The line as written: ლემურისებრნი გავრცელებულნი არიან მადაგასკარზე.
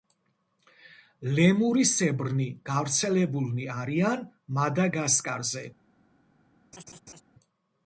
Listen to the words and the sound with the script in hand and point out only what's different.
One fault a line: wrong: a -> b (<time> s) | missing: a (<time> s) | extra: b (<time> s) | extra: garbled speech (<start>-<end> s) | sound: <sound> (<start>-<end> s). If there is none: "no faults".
sound: laugh (6.7-7.2 s)